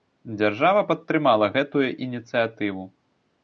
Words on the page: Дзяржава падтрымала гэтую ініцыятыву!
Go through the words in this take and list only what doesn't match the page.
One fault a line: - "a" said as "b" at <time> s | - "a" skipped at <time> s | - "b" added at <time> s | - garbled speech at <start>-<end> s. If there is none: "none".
none